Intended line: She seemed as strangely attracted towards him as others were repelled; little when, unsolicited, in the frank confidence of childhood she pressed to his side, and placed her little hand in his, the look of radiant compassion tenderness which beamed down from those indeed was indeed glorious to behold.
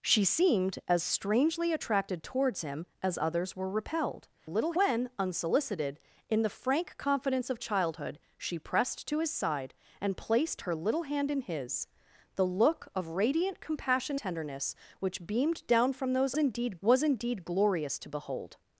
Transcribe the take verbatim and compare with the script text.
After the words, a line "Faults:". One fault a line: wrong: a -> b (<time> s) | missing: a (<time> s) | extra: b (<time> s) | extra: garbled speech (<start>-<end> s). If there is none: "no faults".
She seemed as strangely attracted towards him as others were repelled; little when, unsolicited, in the frank confidence of childhood she pressed to his side, and placed her little hand in his, the look of radiant compassion tenderness which beamed down from those indeed was indeed glorious to behold.
Faults:
no faults